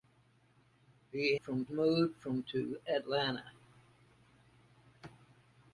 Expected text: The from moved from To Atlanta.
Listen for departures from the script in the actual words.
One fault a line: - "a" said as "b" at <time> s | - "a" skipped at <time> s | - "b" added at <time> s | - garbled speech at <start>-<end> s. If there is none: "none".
none